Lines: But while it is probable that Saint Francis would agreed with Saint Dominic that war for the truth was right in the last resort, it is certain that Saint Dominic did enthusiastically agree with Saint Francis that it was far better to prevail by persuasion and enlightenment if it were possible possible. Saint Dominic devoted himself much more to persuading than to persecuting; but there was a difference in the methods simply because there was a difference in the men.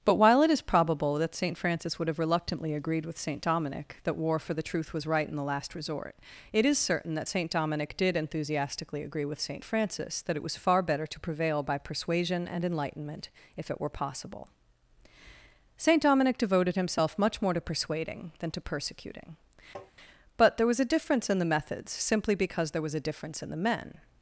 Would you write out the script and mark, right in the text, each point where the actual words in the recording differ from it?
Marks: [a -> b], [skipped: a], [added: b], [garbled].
But while it is probable that Saint Francis would [added: have reluctantly] agreed with Saint Dominic that war for the truth was right in the last resort, it is certain that Saint Dominic did enthusiastically agree with Saint Francis that it was far better to prevail by persuasion and enlightenment if it were possible [skipped: possible.] Saint Dominic devoted himself much more to persuading than to persecuting; but there was a difference in the methods simply because there was a difference in the men.